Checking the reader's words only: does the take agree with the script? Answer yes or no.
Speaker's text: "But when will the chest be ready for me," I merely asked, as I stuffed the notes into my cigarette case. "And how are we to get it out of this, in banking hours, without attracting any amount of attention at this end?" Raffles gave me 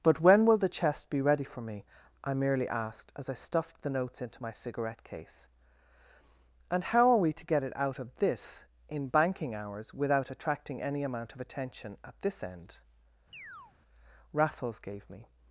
yes